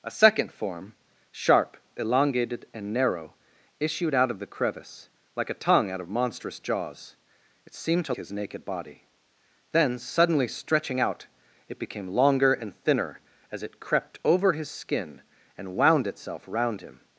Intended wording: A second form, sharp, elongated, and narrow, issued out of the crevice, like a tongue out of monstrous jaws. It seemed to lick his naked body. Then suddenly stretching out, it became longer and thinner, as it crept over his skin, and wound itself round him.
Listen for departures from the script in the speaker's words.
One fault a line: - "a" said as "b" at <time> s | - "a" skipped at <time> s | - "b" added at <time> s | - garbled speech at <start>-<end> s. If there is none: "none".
- "lick" skipped at 8.2 s